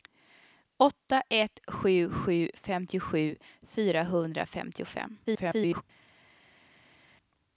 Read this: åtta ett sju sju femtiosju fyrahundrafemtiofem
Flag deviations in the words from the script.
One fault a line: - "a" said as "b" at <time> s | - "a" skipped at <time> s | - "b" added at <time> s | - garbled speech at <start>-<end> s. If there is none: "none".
- garbled speech at 5.2-5.8 s